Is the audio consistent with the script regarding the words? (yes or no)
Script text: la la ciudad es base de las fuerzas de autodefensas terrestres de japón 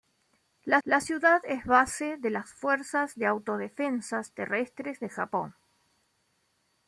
yes